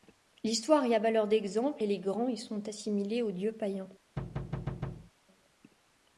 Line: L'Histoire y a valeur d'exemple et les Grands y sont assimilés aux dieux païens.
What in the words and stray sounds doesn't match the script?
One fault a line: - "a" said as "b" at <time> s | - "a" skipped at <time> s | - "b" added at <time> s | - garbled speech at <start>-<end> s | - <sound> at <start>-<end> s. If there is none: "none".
- thud at 4.2-5.1 s